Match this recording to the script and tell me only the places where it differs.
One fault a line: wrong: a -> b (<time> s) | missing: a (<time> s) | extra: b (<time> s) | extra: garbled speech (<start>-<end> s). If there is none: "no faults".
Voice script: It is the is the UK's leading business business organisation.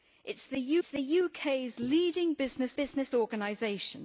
no faults